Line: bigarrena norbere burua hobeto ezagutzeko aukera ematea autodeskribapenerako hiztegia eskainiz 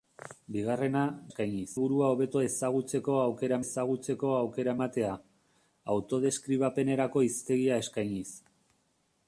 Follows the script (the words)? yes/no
no